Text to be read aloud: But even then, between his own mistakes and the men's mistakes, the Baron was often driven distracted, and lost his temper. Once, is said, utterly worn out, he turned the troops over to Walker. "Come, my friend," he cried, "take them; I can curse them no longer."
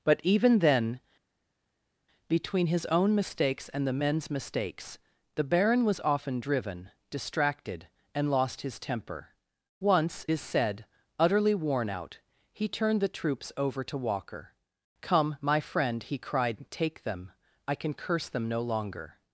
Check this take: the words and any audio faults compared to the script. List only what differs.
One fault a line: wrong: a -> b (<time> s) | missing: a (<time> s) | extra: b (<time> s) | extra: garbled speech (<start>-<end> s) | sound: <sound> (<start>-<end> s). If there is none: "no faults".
no faults